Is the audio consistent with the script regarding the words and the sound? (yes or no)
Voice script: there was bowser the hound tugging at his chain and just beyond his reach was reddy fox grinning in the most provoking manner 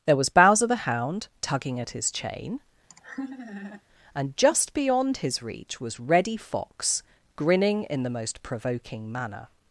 no